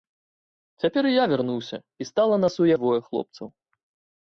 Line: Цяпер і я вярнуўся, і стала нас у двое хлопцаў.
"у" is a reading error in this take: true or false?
false